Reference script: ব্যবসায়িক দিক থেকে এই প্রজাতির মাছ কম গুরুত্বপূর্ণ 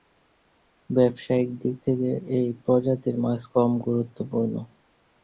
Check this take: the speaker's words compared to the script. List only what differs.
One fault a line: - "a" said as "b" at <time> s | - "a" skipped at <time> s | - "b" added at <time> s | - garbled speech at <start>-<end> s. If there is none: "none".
none